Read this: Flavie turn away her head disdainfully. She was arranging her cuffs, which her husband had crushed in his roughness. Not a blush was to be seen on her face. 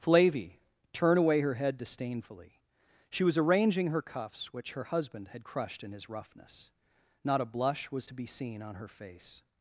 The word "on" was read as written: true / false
true